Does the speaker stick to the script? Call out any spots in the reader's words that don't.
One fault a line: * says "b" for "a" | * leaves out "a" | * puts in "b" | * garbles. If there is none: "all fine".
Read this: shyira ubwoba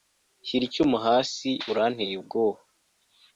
* puts in "icyuma hasi uranteye"